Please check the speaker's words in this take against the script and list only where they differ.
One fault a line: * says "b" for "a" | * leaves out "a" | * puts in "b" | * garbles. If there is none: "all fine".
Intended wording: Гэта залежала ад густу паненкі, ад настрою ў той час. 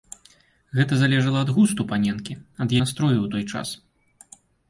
all fine